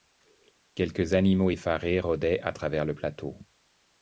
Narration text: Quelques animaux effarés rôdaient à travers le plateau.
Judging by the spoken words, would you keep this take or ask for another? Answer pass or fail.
pass